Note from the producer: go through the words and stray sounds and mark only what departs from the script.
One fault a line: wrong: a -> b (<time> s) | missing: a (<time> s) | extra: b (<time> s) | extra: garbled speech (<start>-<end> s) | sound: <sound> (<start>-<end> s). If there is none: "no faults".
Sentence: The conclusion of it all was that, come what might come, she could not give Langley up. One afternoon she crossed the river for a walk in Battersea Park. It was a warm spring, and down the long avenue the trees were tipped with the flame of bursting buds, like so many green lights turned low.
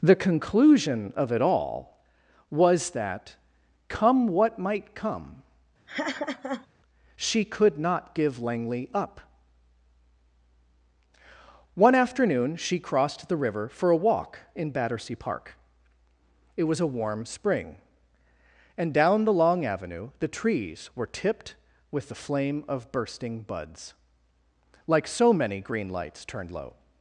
sound: laugh (5.9-6.7 s)